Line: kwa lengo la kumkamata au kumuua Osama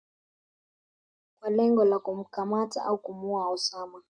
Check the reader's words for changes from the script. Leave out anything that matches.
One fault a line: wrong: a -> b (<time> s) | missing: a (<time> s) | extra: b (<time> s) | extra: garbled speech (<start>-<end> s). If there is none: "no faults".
no faults